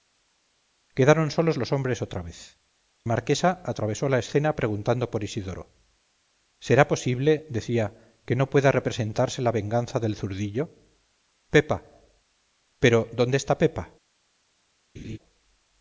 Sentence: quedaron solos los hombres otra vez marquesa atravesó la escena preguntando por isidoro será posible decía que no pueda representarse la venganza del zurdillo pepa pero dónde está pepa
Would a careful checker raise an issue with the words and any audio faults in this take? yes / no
yes